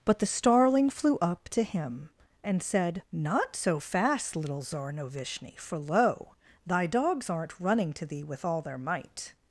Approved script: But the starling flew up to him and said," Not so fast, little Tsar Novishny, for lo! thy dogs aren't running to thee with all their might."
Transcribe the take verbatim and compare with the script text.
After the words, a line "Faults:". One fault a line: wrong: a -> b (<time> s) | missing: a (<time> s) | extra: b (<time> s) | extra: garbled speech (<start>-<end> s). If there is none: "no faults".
But the starling flew up to him and said," Not so fast, little Tsar Novishny, for lo! thy dogs aren't running to thee with all their might."
Faults:
no faults